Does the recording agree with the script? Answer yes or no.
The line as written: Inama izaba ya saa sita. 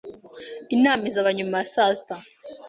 no